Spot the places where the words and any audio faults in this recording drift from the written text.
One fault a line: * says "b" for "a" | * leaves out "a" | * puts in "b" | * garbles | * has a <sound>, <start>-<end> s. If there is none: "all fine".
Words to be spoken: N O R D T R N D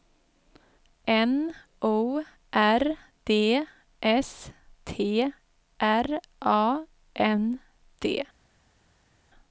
* puts in "S"
* puts in "A"